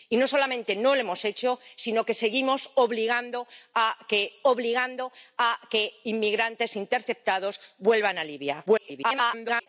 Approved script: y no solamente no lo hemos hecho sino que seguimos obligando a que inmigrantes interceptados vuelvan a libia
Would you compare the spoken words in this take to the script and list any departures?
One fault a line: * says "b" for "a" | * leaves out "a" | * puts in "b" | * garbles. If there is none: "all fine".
* puts in "obligando a que"
* garbles